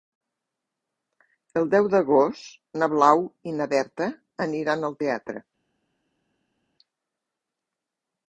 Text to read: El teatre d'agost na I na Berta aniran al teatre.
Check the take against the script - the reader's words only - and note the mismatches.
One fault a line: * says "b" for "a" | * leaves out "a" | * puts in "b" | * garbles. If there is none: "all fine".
* says "deu" for "teatre"
* puts in "Blau"